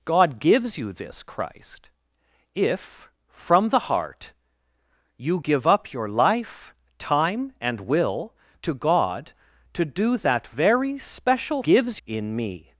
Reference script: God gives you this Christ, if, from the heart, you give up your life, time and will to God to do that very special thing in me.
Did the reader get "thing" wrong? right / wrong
wrong